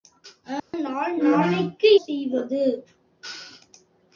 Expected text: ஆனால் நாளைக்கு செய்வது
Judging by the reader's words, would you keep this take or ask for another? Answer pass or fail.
pass